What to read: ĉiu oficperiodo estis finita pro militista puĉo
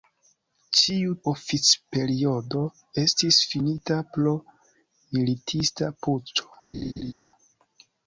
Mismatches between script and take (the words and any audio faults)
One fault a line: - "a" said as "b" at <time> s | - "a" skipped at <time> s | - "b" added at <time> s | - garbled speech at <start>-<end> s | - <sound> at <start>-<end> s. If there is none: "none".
- laugh at 6.7-7.1 s